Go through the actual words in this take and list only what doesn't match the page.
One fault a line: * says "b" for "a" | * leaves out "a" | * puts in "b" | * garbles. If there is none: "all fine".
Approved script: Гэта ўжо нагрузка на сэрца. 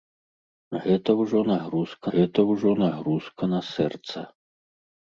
* puts in "гэта ўжо нагрузка"